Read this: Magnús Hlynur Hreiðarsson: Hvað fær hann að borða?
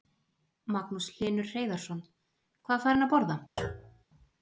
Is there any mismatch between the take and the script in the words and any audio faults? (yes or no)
yes